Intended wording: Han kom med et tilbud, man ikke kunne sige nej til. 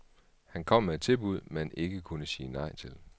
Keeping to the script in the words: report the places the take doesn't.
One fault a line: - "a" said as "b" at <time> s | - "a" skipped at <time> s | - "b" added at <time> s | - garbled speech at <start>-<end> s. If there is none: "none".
none